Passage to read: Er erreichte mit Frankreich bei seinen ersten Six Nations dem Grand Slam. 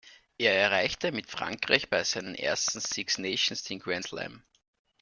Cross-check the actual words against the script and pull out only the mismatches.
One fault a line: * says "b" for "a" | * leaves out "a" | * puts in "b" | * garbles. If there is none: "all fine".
* says "den" for "dem"